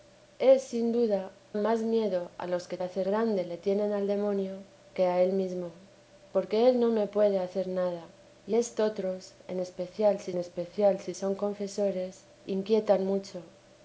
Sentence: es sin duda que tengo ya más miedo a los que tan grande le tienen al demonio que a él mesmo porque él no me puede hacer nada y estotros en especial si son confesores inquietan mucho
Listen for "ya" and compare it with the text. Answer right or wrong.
wrong